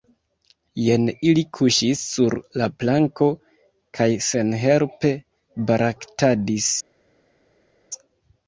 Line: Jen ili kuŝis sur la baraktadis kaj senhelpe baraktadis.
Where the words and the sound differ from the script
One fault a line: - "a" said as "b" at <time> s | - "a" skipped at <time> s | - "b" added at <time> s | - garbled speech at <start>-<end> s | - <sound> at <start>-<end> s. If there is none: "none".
- "baraktadis" said as "planko" at 2.8 s